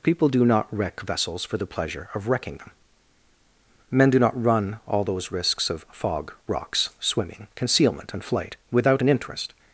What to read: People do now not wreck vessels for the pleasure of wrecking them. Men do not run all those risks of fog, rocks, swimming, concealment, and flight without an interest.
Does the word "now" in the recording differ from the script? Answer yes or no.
yes